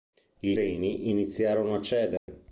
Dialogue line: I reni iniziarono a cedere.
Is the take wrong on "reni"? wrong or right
right